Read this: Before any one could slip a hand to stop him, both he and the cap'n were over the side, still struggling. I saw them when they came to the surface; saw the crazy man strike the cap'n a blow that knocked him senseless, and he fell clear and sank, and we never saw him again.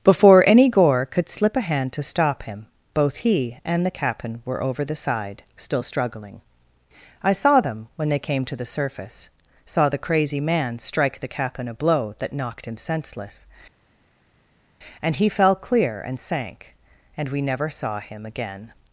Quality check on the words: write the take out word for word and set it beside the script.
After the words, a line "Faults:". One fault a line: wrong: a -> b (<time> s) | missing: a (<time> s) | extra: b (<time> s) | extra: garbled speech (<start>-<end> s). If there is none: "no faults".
Before any gore could slip a hand to stop him, both he and the cap'n were over the side, still struggling. I saw them when they came to the surface; saw the crazy man strike the cap'n a blow that knocked him senseless, and he fell clear and sank, and we never saw him again.
Faults:
wrong: one -> gore (0.7 s)